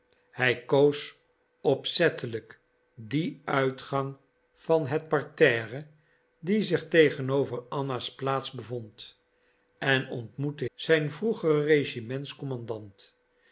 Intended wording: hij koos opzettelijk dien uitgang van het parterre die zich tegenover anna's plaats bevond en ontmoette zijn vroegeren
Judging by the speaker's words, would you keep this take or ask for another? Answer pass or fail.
pass